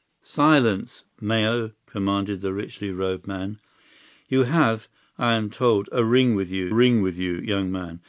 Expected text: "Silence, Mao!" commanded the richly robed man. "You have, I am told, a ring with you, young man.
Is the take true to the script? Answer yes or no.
no